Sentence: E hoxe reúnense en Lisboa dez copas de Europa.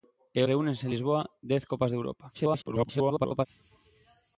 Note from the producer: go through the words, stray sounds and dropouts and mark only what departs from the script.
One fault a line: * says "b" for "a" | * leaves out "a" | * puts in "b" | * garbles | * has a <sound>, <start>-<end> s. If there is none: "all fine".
* leaves out "hoxe"
* garbles